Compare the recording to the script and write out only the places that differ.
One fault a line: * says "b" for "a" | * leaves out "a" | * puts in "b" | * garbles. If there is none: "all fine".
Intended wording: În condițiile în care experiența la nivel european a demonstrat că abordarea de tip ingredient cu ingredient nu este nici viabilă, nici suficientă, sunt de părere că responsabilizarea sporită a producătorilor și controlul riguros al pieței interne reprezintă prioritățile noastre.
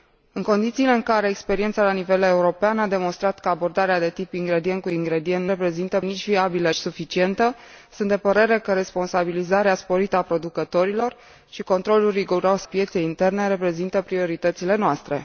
* says "reprezintă" for "este"
* leaves out "nici"
* leaves out "al"